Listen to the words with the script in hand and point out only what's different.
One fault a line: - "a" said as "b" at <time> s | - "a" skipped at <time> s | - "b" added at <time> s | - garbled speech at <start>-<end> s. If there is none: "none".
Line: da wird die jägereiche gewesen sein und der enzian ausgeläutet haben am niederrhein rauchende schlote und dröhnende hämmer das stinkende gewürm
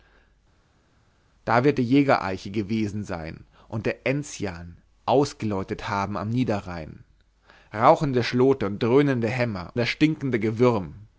none